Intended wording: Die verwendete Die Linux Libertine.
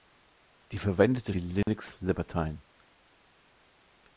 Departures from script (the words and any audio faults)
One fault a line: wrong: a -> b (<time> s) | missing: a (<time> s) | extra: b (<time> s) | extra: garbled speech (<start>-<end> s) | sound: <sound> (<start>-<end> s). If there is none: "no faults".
sound: dropout (1.6-1.7 s)